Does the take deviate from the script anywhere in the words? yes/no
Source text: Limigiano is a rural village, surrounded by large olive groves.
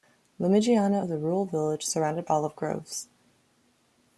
yes